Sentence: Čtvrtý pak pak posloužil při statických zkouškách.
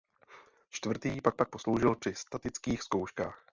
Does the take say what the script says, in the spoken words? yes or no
yes